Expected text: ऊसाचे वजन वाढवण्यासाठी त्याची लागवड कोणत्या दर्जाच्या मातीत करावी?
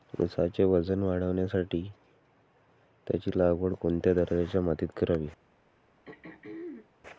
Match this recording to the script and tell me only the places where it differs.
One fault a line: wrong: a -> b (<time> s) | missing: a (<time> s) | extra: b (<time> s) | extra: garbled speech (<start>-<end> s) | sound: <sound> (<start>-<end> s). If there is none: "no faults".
sound: throat clearing (6.0-6.9 s)